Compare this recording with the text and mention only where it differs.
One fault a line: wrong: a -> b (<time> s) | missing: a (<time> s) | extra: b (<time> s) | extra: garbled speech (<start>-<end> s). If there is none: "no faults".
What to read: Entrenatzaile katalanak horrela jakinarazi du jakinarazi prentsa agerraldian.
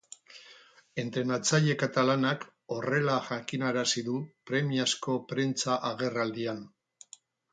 wrong: jakinarazi -> premiazko (4.5 s)